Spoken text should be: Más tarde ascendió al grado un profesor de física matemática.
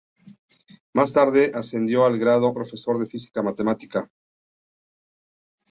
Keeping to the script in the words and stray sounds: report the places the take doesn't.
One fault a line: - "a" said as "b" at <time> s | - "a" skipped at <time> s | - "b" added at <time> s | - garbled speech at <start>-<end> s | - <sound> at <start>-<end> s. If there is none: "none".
- "un" skipped at 2.5 s